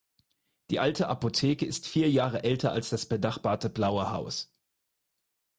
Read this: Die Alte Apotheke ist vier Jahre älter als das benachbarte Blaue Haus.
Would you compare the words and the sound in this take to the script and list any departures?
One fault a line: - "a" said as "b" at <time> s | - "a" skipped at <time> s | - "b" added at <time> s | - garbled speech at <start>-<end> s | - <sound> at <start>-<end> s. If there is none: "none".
none